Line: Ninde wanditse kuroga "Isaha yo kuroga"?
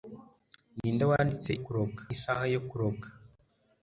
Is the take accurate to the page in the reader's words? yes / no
yes